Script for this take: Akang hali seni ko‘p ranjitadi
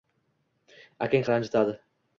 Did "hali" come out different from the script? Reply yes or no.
yes